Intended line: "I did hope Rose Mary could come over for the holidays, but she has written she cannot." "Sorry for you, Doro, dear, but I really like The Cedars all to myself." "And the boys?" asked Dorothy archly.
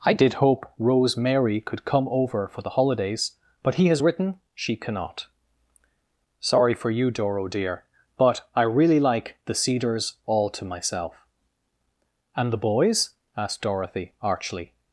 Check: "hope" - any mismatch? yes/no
no